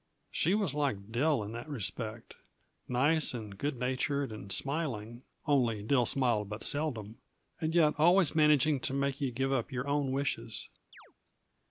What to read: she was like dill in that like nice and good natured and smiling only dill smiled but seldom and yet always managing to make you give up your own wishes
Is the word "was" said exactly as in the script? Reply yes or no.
yes